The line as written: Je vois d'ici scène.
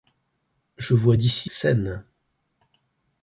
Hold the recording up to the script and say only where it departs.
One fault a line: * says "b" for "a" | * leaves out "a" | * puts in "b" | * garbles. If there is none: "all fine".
all fine